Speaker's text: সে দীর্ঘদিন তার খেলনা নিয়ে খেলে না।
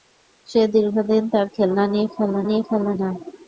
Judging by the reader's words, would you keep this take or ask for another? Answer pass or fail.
fail